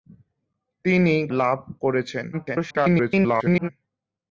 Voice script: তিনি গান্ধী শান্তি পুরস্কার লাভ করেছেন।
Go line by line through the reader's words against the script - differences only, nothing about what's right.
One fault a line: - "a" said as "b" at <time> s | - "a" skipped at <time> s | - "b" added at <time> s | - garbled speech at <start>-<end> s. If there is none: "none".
- "গান্ধী শান্তি পুরস্কার" skipped at 1.1 s
- garbled speech at 2.3-3.7 s